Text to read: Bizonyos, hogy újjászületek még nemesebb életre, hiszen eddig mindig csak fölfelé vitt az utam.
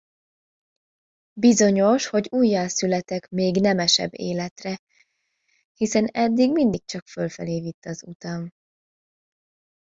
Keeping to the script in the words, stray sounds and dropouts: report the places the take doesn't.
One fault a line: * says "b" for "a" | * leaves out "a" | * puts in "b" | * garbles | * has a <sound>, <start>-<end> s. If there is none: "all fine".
all fine